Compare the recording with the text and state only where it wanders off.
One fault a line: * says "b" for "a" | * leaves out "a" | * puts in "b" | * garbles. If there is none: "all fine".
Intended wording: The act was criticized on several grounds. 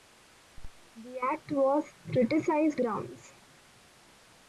* leaves out "on several"